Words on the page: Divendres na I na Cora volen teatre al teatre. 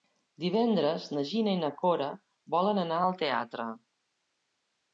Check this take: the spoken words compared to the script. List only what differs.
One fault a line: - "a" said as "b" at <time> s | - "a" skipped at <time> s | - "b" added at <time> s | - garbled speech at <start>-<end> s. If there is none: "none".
- "Gina" added at 1.3 s
- "teatre" said as "anar" at 2.9 s